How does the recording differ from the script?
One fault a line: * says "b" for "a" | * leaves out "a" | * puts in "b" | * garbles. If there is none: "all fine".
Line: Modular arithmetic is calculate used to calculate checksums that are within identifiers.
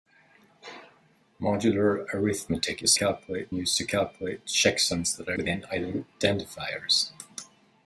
all fine